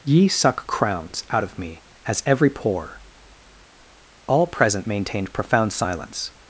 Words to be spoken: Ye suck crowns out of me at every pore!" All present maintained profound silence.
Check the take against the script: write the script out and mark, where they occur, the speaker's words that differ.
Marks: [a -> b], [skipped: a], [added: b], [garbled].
Ye suck crowns out of me [at -> as] every pore!" All present maintained profound silence.